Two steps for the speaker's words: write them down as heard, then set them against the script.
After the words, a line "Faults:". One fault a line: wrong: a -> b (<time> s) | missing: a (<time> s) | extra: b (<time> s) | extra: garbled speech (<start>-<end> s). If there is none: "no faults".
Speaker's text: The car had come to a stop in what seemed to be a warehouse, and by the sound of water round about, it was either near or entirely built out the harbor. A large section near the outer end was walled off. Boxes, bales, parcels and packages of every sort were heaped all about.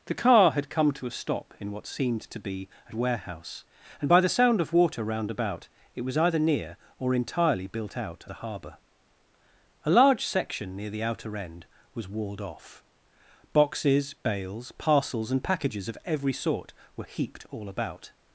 The car had come to a stop in what seemed to be a warehouse, and by the sound of water round about, it was either near or entirely built out the harbor. A large section near the outer end was walled off. Boxes, bales, parcels and packages of every sort were heaped all about.
Faults:
no faults